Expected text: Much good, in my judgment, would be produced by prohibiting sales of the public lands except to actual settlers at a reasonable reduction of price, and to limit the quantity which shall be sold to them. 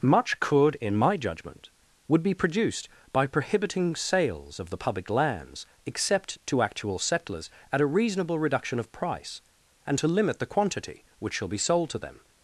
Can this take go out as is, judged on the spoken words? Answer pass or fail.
fail